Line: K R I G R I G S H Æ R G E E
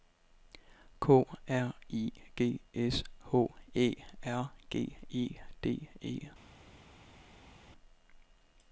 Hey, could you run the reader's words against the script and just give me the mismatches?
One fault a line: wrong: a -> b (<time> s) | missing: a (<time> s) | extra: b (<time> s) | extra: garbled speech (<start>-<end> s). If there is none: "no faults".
missing: R I G (2.6 s)
extra: D (5.6 s)